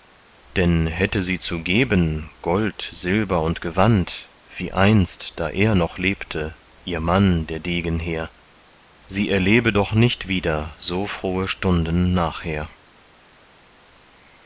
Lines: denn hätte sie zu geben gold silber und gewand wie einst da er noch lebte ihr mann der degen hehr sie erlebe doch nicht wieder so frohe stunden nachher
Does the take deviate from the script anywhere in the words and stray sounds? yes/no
no